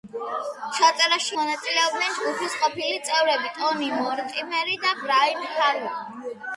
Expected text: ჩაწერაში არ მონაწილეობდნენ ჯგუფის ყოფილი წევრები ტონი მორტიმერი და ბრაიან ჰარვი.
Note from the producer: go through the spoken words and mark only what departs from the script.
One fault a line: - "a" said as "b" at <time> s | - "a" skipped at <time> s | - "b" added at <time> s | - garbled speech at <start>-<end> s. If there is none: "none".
- "არ" skipped at 1.4 s